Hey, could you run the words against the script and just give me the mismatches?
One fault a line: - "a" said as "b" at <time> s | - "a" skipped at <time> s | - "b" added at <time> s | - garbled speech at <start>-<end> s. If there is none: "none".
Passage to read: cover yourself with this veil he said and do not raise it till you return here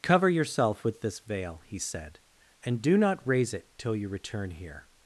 none